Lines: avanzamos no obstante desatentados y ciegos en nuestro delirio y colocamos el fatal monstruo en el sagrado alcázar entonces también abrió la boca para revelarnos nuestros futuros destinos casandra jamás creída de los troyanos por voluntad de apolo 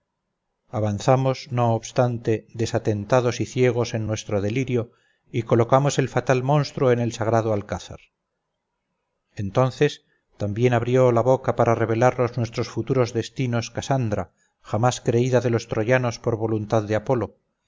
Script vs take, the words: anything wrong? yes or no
no